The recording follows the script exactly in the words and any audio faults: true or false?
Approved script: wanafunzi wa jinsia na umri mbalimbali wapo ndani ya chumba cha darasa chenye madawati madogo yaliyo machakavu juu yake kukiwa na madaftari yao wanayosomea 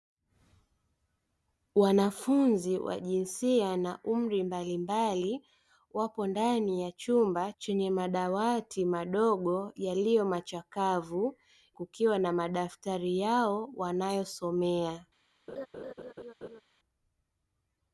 false